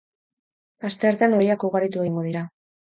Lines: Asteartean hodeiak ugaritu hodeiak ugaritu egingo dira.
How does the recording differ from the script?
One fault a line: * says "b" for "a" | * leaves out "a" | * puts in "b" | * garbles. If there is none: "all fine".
* leaves out "hodeiak ugaritu"